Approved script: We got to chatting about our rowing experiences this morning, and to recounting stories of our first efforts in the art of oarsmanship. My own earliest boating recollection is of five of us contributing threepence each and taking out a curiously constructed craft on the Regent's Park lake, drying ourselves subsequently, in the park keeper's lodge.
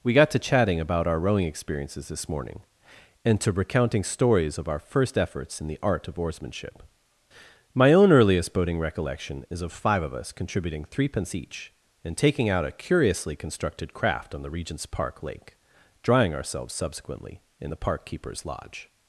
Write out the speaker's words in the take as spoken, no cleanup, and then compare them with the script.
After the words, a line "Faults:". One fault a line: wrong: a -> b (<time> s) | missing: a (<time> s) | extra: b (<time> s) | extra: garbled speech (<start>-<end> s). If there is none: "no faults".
We got to chatting about our rowing experiences this morning, and to recounting stories of our first efforts in the art of oarsmanship. My own earliest boating recollection is of five of us contributing threepence each and taking out a curiously constructed craft on the Regent's Park lake, drying ourselves subsequently, in the park keeper's lodge.
Faults:
no faults